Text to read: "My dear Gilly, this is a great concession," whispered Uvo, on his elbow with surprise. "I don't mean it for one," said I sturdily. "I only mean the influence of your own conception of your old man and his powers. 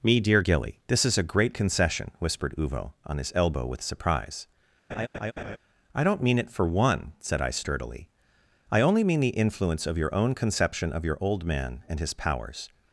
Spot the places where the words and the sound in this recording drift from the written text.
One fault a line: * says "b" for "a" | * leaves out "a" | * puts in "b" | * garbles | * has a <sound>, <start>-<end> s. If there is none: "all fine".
* says "Me" for "My"
* has a laugh, 4.9-5.6 s